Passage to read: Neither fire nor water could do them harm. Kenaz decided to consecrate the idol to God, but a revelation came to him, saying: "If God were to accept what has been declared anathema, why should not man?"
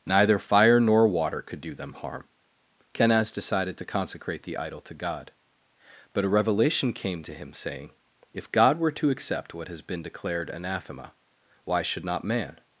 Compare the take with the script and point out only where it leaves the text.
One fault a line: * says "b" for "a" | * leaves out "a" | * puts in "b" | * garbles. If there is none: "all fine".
all fine